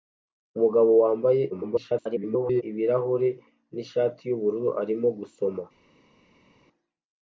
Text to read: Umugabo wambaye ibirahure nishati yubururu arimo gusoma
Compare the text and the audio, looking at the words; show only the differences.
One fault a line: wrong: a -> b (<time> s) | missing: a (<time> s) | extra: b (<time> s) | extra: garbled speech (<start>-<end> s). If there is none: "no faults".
extra: garbled speech (1.5-2.6 s)